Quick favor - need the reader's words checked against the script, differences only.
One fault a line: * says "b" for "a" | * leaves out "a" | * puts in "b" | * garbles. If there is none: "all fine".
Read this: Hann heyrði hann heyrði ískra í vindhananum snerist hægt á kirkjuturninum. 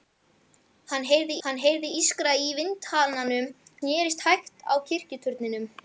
all fine